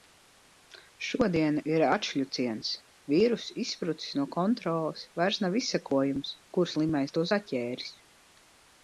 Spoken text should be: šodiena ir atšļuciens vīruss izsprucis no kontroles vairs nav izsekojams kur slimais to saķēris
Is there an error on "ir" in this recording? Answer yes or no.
no